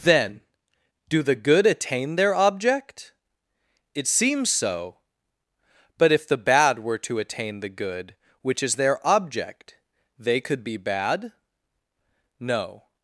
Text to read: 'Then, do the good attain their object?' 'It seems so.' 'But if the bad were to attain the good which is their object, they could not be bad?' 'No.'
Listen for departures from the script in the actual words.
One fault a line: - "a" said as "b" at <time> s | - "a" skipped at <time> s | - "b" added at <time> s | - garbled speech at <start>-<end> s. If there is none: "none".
- "not" skipped at 10.6 s